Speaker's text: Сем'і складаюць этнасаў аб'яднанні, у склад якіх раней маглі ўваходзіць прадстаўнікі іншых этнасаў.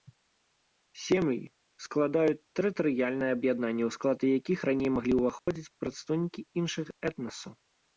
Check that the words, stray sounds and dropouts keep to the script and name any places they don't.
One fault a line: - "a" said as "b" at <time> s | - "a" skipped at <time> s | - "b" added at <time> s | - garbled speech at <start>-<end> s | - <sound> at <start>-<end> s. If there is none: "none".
- "этнасаў" said as "тэрытарыяльныя" at 2.6 s
- dropout at 5.4-5.5 s